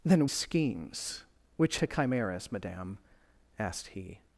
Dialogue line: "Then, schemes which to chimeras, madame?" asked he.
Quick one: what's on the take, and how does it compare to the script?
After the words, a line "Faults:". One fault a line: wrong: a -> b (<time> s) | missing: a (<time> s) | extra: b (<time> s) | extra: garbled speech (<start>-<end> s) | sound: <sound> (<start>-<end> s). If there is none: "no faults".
"Then, schemes which to chimeras, madame?" asked he.
Faults:
no faults